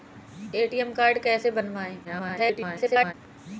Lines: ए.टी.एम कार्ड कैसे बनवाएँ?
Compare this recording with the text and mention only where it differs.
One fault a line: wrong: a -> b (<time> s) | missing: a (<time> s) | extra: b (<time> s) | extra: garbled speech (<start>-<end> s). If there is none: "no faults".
extra: garbled speech (2.0-3.1 s)